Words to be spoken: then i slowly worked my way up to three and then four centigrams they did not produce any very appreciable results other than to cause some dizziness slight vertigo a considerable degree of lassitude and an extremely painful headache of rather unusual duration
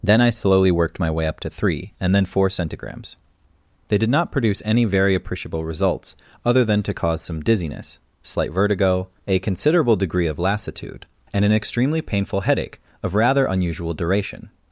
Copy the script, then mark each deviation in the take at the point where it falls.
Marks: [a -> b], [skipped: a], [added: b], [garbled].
then i slowly worked my way up to three and then four centigrams they did not produce any very appreciable results other than to cause some dizziness slight vertigo a considerable degree of lassitude and an extremely painful headache of rather unusual duration